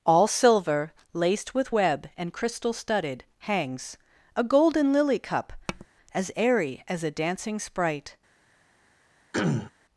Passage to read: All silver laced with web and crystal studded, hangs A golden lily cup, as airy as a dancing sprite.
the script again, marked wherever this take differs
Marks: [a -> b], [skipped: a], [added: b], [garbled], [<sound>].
All silver laced with web and crystal studded, hangs A golden lily cup, [tap] as airy as a dancing sprite. [throat clearing]